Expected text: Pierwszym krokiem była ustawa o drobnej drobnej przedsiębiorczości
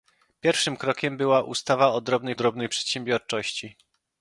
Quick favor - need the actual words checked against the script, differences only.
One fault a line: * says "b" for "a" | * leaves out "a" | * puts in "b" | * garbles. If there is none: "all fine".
all fine